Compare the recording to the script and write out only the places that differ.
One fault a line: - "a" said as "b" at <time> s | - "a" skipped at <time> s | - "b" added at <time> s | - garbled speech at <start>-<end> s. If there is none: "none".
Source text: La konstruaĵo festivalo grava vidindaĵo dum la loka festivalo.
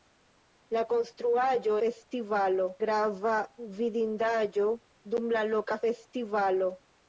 none